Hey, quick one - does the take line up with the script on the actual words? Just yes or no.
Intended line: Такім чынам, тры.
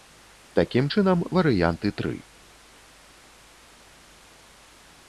no